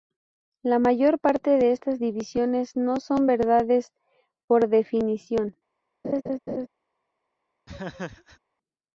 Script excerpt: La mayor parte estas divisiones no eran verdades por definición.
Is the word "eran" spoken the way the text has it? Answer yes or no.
no